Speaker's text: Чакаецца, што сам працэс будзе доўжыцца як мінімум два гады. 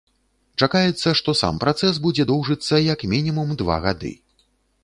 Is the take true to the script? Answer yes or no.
yes